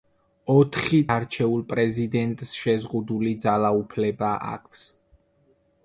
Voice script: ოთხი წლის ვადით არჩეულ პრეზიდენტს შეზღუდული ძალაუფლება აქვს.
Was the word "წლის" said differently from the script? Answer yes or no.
yes